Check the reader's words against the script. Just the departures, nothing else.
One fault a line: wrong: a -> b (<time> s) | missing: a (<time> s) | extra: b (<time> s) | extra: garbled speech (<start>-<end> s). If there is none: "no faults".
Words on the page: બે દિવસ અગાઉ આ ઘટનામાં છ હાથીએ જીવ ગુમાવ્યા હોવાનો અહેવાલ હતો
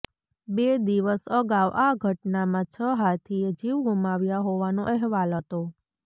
no faults